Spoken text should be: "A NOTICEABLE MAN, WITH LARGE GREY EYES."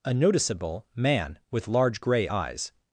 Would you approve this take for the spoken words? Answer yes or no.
yes